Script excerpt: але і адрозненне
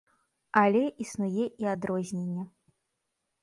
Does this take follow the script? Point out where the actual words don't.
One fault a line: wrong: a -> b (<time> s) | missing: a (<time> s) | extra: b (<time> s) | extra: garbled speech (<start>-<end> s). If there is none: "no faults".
extra: існуе (1.1 s)